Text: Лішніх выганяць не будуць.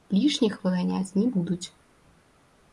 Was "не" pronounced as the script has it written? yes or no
yes